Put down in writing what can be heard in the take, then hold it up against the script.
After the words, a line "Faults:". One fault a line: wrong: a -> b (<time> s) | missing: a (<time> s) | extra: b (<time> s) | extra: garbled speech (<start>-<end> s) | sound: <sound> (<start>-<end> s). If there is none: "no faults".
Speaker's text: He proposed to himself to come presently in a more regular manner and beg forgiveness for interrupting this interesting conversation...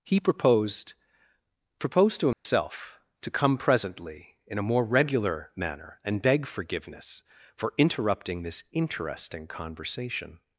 He proposed proposed to himself to come presently in a more regular manner and beg forgiveness for interrupting this interesting conversation...
Faults:
extra: proposed (1.8 s)
sound: dropout (2.3-2.5 s)